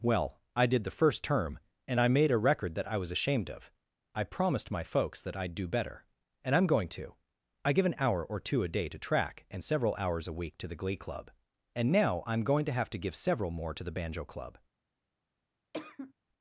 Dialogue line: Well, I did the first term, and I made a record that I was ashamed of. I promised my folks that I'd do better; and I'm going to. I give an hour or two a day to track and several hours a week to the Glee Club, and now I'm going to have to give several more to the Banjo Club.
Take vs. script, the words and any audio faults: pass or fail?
fail